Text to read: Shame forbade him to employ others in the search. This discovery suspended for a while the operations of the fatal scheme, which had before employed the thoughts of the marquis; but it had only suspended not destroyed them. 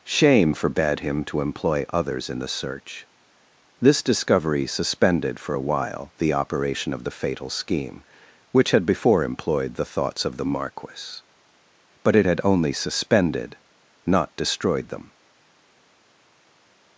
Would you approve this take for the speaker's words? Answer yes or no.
no